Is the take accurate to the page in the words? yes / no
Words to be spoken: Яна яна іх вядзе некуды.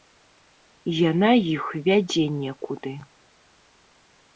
no